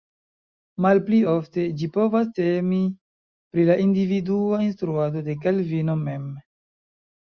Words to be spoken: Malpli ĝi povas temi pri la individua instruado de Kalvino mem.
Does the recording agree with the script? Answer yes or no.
no